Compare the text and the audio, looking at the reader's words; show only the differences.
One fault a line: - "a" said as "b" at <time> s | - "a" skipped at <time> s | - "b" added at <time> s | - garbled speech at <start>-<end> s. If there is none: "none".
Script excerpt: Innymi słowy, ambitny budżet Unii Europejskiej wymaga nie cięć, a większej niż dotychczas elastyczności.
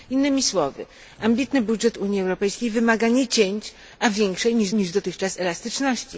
- "niż" added at 4.7 s